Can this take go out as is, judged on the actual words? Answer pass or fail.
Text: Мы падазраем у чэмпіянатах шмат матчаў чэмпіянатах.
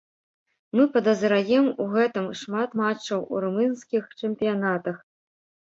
fail